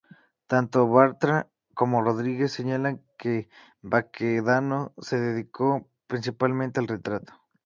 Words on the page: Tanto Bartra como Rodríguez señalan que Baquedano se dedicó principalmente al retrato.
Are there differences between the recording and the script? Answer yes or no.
no